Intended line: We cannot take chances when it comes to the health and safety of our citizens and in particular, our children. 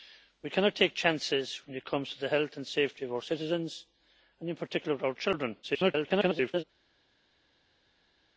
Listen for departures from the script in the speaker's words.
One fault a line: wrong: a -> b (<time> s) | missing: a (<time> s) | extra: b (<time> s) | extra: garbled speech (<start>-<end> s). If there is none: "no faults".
extra: garbled speech (5.6-6.6 s)